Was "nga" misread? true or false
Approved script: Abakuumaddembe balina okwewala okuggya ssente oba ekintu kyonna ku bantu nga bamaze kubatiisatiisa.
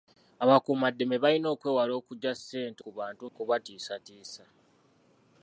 true